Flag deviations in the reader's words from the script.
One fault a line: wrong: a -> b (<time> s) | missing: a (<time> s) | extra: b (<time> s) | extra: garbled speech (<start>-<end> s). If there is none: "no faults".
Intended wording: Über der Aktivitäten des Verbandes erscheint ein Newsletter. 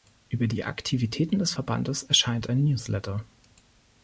wrong: der -> die (0.5 s)